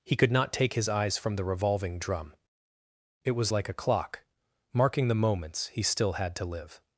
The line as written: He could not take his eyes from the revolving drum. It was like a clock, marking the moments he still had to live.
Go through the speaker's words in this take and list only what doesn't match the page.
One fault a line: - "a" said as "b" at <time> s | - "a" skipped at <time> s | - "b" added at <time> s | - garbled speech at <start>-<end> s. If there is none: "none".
none